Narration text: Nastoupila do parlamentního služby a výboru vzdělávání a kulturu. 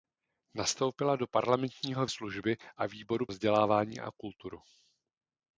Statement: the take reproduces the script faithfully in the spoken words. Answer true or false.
true